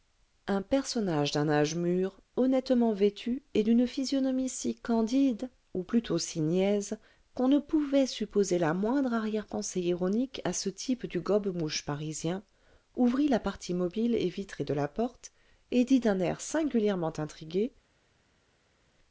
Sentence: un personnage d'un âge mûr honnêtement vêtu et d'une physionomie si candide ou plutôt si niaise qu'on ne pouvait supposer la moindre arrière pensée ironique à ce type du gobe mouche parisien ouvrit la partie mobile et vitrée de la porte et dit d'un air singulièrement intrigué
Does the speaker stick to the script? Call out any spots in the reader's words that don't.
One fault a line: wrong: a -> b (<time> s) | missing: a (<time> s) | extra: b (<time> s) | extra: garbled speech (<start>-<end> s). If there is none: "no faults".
no faults